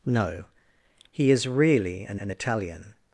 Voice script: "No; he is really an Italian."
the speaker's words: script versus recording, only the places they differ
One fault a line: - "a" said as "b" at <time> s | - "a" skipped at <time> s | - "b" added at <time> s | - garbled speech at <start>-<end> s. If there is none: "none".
- "an" added at 2.2 s